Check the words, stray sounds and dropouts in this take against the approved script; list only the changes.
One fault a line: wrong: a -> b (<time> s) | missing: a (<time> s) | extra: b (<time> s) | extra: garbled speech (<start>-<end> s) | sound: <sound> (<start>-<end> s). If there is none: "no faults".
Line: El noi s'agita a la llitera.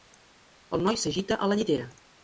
no faults